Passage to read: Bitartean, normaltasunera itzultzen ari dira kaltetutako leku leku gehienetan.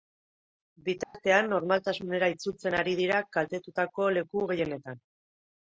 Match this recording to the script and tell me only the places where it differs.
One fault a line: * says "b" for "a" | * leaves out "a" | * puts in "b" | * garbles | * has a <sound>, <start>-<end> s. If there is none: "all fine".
* has a dropout, 1.0-1.1 s
* leaves out "leku"